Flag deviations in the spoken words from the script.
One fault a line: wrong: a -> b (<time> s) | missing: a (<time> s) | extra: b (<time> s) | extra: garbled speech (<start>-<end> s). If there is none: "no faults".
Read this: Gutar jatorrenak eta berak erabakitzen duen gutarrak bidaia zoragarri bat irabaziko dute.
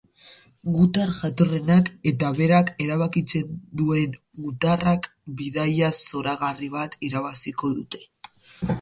no faults